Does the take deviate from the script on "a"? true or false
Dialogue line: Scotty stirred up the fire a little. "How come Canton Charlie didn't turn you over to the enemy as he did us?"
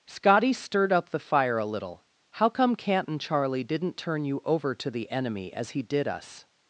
false